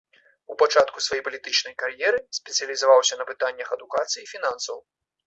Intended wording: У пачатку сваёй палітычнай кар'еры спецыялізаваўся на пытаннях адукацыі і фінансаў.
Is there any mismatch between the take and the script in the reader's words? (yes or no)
no